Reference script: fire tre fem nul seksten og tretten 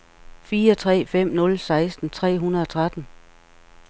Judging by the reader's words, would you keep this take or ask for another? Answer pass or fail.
fail